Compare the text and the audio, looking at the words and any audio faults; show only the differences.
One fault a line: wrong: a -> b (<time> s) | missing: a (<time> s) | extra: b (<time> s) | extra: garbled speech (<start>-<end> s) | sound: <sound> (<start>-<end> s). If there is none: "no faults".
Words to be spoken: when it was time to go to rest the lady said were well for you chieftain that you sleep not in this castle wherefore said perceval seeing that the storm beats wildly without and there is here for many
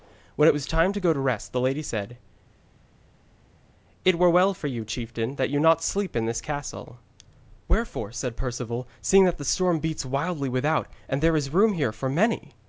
extra: it (4.1 s)
extra: room (11.5 s)